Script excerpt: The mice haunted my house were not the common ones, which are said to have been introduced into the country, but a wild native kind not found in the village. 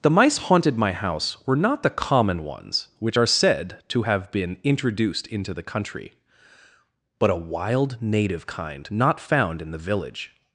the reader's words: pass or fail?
pass